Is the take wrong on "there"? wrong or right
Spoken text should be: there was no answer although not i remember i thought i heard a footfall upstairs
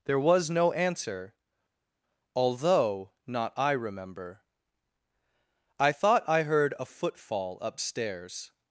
right